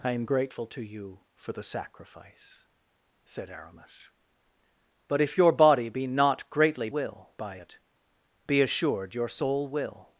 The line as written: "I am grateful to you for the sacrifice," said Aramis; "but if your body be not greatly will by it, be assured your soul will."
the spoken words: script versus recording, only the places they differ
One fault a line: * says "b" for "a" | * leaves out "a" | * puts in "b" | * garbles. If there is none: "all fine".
all fine